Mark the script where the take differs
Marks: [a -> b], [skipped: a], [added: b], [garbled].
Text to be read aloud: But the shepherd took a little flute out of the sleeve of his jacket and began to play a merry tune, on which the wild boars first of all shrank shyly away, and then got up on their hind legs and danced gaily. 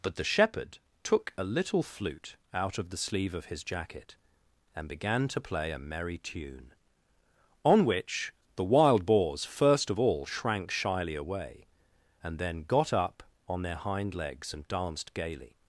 But the shepherd took a little flute out of the sleeve of his jacket and began to play a merry tune, on which the wild boars first of all shrank shyly away, and then got up on their hind legs and danced gaily.